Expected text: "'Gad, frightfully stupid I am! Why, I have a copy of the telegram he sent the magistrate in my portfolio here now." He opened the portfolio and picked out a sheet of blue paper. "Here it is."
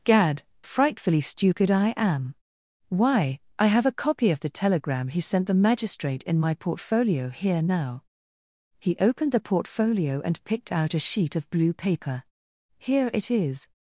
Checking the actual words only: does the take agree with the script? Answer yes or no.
yes